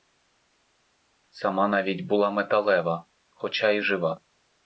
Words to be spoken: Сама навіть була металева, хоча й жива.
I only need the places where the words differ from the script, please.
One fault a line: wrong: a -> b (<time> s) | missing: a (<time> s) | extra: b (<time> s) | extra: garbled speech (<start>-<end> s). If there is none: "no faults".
no faults